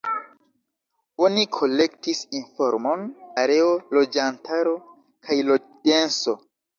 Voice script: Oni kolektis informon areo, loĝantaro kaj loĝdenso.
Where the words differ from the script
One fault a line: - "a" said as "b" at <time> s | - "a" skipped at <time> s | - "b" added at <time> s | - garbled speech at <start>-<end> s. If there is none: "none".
none